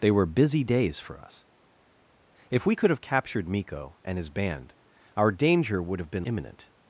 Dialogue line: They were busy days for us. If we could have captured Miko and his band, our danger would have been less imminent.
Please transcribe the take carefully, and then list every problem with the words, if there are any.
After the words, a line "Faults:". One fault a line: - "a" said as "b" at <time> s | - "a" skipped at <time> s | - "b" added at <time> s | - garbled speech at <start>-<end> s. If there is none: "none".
They were busy days for us. If we could have captured Miko and his band, our danger would have been imminent.
Faults:
- "less" skipped at 6.2 s